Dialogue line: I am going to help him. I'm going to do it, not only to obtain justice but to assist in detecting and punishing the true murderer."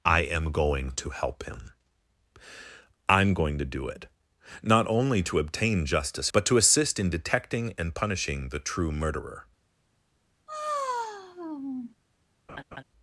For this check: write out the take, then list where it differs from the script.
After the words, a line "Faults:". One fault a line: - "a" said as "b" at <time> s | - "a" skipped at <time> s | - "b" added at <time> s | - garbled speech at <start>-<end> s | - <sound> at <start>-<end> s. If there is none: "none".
I am going to help him. I'm going to do it, not only to obtain justice but to assist in detecting and punishing the true murderer."
Faults:
- sigh at 10.5-12.0 s
- laugh at 12.5-12.8 s